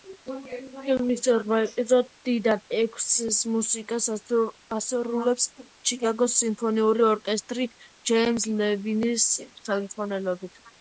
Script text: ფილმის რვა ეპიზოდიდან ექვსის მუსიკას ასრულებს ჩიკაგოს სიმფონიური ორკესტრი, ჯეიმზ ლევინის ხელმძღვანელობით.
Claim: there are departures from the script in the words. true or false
false